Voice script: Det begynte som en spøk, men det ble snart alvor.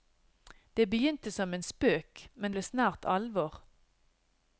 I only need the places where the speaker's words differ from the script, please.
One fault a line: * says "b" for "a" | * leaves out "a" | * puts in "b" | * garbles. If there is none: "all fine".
* leaves out "det"